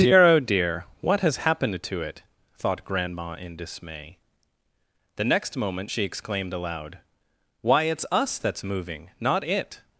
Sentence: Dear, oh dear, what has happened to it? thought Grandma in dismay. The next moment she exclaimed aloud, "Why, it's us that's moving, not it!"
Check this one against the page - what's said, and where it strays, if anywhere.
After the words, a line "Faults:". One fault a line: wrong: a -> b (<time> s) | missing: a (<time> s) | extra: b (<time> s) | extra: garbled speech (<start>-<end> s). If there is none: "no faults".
Dear, oh dear, what has happened to it? thought Grandma in dismay. The next moment she exclaimed aloud, "Why, it's us that's moving, not it!"
Faults:
no faults